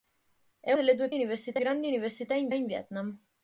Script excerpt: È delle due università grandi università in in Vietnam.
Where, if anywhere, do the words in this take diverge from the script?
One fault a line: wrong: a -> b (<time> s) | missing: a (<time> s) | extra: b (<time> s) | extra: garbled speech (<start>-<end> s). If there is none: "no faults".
no faults